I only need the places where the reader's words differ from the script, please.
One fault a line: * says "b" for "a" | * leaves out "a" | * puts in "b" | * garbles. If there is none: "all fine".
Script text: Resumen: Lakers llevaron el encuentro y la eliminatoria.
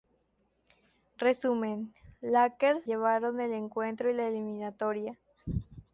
all fine